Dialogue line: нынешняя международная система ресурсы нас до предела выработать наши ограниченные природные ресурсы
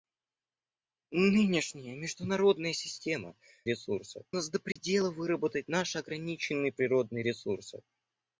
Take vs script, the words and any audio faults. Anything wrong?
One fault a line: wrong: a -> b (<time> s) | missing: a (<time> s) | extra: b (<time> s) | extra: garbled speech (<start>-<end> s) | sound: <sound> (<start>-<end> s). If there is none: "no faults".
sound: dropout (4.7-4.8 s)